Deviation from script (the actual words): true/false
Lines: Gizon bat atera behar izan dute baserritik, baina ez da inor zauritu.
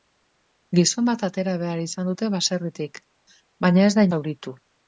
true